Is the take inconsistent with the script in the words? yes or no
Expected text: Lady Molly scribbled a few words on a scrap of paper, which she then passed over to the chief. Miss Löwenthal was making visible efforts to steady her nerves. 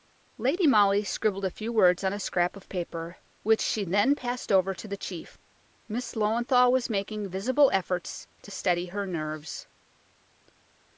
no